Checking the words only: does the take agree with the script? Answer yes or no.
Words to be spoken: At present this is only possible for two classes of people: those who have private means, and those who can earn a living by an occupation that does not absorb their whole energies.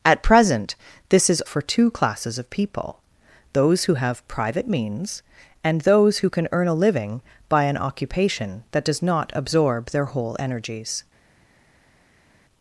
no